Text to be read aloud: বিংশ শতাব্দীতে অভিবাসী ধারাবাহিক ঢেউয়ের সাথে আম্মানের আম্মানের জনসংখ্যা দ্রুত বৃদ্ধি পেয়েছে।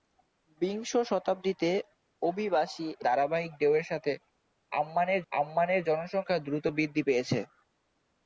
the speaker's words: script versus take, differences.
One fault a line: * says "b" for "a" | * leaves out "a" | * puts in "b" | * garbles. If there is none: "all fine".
all fine